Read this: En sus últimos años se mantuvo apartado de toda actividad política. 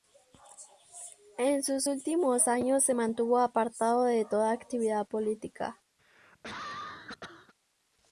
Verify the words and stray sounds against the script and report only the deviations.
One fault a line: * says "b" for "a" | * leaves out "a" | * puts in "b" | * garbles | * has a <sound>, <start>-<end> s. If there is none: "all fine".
* has a cough, 6.0-7.5 s